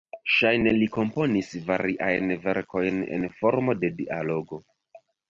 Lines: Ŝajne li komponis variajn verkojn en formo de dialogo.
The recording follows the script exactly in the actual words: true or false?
true